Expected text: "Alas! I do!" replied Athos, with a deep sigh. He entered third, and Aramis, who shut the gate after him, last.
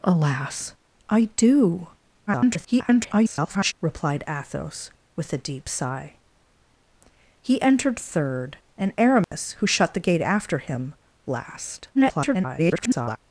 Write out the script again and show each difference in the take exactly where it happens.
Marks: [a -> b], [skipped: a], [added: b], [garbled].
"Alas! I do!" [garbled] replied Athos, with a deep sigh. He entered third, and Aramis, who shut the gate after him, last. [garbled]